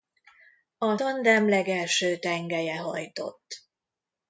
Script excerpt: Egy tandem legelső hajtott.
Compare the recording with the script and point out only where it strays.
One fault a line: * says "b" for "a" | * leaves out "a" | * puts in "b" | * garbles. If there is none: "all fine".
* says "A" for "Egy"
* puts in "tengelye"